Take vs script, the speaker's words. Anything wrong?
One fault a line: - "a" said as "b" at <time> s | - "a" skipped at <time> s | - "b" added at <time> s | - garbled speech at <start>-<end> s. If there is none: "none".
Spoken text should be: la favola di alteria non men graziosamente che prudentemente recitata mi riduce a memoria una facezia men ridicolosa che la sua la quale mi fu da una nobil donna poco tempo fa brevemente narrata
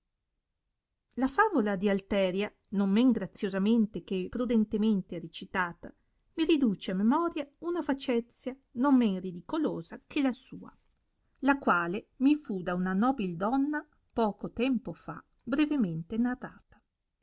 - "non" added at 8.7 s